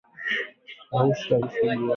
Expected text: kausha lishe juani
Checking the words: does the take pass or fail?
pass